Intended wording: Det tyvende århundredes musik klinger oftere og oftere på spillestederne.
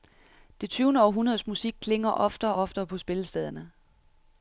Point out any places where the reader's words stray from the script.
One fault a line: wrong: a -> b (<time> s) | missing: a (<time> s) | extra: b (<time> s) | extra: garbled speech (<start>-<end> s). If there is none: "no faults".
missing: og (2.6 s)